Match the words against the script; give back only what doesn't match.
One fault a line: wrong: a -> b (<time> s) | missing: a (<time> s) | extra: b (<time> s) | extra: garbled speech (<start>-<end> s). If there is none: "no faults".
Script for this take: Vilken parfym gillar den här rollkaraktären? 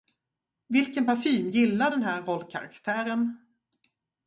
no faults